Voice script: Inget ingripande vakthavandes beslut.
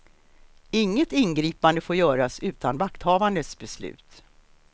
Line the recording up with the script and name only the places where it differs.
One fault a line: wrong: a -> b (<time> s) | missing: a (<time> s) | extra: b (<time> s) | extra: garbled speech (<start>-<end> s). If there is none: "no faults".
extra: får göras utan (1.8 s)